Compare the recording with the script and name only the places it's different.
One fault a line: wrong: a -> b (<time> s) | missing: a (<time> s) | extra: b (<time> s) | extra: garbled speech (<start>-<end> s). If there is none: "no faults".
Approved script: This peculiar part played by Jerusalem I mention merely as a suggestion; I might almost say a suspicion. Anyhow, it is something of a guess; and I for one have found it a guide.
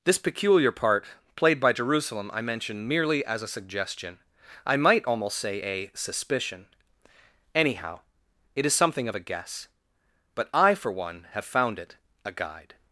wrong: and -> but (10.4 s)